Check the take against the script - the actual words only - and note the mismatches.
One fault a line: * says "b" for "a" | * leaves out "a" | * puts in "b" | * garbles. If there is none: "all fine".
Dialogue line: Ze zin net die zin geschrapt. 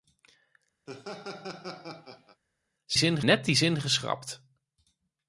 all fine